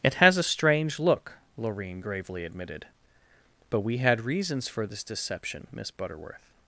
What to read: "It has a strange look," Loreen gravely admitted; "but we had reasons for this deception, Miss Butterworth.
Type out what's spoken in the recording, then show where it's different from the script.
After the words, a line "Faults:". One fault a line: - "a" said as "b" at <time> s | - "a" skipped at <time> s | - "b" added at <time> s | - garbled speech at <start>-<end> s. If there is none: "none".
"It has a strange look," Loreen gravely admitted; "but we had reasons for this deception, Miss Butterworth.
Faults:
none